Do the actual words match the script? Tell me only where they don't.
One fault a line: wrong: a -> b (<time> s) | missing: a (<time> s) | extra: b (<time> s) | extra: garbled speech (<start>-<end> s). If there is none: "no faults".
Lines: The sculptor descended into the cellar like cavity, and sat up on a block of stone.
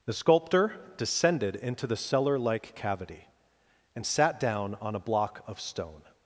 wrong: up -> down (4.4 s)